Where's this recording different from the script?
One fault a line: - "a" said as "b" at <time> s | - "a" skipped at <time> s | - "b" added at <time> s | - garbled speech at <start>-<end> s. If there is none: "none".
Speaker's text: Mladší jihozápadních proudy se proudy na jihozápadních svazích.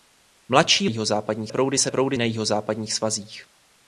none